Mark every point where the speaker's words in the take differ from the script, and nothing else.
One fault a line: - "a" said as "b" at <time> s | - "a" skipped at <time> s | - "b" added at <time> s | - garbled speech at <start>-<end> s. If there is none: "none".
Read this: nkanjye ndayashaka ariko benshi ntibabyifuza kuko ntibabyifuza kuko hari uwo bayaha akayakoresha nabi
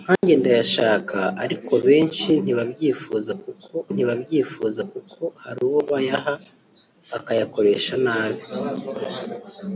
none